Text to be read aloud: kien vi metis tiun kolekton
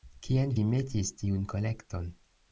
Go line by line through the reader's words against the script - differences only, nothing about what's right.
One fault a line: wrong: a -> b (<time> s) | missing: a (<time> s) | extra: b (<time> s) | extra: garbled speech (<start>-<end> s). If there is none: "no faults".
no faults